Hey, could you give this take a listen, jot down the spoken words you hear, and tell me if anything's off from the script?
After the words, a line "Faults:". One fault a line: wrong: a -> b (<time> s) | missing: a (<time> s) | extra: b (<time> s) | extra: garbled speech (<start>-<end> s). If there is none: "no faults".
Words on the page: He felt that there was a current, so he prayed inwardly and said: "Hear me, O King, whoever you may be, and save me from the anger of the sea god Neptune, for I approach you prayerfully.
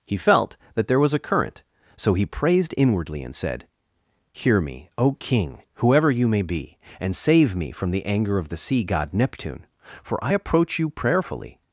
He felt that there was a current, so he praised inwardly and said: "Hear me, O King, whoever you may be, and save me from the anger of the sea god Neptune, for I approach you prayerfully.
Faults:
wrong: prayed -> praised (2.2 s)